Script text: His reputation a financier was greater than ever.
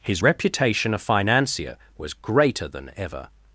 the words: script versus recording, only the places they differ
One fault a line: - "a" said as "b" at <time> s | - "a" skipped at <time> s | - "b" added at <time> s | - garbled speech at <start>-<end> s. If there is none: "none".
none